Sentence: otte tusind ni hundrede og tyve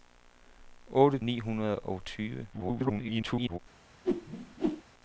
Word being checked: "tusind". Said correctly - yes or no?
no